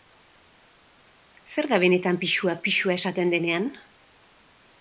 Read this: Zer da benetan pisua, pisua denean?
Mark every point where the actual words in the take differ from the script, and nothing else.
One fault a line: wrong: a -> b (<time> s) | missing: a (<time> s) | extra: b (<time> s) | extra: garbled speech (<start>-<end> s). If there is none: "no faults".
extra: esaten (3.0 s)